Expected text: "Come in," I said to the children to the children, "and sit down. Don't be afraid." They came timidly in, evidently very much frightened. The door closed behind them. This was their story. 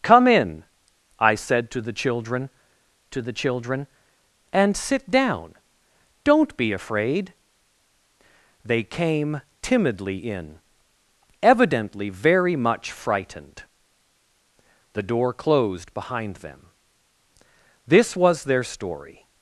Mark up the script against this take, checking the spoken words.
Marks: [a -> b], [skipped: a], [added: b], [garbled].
"Come in," I said to the children to the children, "and sit down. Don't be afraid." They came timidly in, evidently very much frightened. The door closed behind them. This was their story.